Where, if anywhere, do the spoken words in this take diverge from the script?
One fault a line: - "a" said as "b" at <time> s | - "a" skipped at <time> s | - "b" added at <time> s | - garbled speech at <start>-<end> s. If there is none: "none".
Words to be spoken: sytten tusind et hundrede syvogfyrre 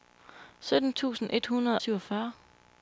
none